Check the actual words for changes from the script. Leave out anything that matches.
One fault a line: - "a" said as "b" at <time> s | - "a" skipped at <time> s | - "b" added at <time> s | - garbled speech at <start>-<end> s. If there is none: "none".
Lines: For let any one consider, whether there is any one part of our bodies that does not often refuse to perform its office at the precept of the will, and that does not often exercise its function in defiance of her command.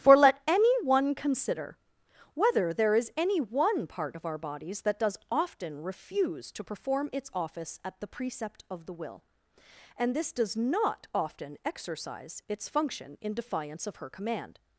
- "not" skipped at 5.2 s
- "that" said as "this" at 10.2 s